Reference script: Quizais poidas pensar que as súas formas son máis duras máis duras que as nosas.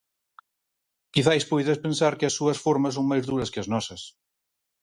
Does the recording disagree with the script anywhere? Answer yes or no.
yes